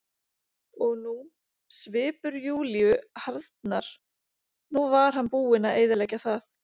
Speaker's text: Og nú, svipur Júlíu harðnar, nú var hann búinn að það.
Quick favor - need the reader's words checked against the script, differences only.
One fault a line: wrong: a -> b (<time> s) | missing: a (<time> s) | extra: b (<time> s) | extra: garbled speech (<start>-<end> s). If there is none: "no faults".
extra: eyðileggja (5.8 s)